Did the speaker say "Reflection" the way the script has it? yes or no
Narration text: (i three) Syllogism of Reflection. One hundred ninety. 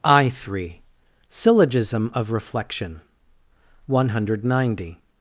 yes